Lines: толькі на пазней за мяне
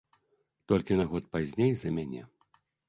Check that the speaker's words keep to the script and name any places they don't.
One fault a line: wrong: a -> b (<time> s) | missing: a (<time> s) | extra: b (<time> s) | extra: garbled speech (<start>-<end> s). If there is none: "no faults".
extra: год (1.1 s)